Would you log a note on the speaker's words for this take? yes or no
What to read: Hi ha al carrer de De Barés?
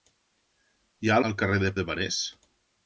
no